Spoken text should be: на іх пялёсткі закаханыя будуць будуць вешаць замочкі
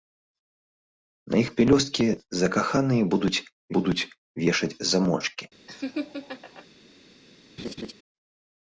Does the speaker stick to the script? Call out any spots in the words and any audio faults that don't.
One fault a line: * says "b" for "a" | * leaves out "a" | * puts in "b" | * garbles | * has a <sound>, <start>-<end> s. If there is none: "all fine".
* has a laugh, 5.7-6.7 s
* has a laugh, 7.6-7.9 s